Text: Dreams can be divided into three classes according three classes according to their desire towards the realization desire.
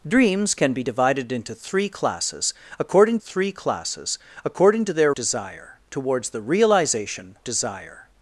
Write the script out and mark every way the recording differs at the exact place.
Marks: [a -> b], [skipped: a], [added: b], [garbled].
Dreams can be divided into three classes according three classes according to their desire towards the realization desire.